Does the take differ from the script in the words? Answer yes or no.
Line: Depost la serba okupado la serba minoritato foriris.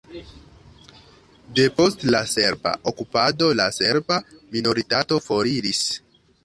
no